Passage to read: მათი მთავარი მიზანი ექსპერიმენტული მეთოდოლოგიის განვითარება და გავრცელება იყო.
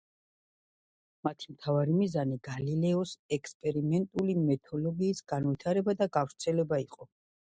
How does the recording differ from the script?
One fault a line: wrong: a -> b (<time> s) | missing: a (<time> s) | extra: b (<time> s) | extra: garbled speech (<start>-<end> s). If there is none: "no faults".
extra: გალილეოს (2.5 s)